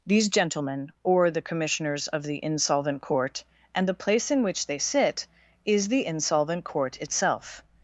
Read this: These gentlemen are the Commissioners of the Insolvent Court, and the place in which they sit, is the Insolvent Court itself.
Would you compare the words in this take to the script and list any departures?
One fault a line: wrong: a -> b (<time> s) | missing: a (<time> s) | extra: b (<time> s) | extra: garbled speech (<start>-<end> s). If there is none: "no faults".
wrong: are -> or (1.0 s)